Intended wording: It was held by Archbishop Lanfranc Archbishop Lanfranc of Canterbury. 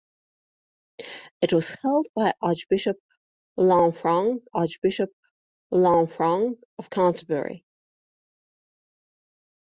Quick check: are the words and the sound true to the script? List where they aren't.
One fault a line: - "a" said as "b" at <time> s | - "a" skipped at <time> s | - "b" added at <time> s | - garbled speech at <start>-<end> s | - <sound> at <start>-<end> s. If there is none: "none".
none